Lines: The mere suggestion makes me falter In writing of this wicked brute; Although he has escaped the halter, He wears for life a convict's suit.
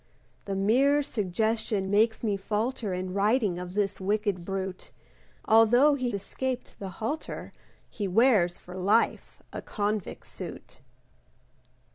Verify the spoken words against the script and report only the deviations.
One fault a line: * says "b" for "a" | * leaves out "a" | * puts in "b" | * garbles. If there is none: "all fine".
* leaves out "has"